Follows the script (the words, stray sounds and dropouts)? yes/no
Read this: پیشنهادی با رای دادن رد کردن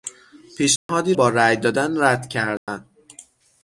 no